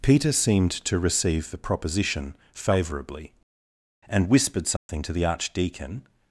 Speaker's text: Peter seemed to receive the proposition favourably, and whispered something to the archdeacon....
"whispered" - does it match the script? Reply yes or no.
yes